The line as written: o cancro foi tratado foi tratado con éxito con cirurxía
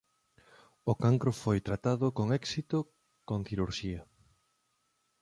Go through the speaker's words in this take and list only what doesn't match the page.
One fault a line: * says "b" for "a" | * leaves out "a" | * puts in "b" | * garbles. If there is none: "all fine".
* leaves out "foi tratado"